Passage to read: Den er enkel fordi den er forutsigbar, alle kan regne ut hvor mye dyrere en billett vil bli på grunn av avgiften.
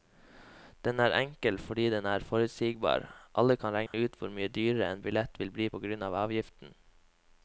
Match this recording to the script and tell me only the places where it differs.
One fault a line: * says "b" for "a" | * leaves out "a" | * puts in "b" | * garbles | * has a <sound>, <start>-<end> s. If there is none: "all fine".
* has a dropout, 3.9-3.9 s